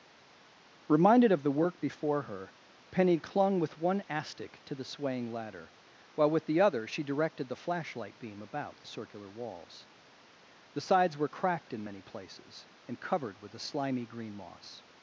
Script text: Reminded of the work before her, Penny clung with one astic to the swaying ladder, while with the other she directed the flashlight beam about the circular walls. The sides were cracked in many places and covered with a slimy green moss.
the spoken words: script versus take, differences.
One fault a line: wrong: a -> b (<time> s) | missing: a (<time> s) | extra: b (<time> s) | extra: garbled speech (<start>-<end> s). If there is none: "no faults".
no faults